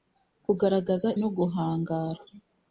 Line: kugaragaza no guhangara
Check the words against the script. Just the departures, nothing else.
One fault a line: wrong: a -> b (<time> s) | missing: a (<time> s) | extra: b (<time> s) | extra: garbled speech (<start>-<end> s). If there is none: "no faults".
no faults